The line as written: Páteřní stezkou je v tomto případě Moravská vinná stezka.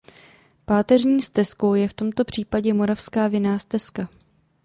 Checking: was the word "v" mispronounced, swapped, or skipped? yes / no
no